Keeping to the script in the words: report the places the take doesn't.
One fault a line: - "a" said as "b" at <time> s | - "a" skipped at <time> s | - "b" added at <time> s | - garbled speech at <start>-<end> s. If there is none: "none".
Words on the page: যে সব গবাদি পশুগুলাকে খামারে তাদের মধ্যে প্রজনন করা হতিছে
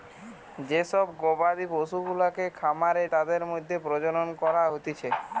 none